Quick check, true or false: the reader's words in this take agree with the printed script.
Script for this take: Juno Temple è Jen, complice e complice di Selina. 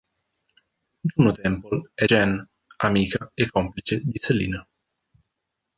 false